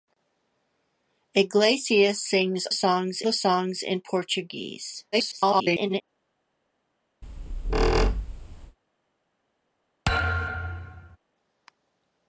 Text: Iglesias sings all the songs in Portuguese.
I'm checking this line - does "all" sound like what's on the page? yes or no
no